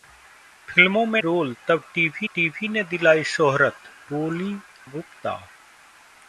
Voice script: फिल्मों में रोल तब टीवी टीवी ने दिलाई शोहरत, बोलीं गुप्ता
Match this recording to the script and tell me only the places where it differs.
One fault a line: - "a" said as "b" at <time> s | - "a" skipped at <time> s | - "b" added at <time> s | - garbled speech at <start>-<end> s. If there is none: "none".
none